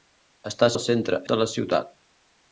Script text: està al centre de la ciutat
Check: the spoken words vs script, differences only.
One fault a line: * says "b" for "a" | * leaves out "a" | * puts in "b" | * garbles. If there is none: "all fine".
all fine